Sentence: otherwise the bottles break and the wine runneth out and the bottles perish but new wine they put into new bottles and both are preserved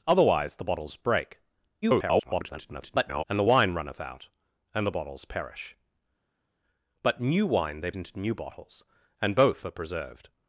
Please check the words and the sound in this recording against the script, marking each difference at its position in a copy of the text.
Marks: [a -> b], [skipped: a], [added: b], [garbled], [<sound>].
otherwise the bottles break [garbled] and the wine runneth out and the bottles perish but new wine they [skipped: put] into new bottles and both are preserved